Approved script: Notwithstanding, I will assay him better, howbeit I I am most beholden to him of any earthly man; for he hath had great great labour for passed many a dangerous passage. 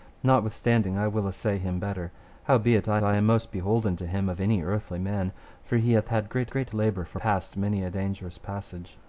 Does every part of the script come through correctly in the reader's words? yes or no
yes